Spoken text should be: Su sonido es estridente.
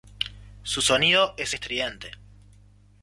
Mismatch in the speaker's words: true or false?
false